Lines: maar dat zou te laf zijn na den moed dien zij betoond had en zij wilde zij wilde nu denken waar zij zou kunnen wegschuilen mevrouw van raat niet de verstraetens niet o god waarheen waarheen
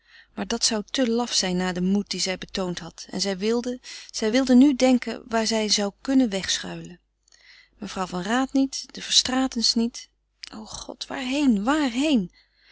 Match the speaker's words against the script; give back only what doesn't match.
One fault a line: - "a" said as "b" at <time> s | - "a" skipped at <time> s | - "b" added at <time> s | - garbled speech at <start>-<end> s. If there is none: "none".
none